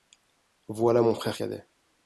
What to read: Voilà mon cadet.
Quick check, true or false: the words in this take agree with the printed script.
false